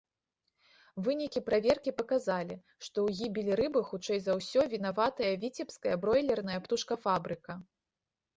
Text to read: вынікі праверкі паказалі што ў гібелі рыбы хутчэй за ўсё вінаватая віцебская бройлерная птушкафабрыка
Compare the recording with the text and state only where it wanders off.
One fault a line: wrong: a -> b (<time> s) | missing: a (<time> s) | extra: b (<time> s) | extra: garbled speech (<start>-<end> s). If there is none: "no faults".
no faults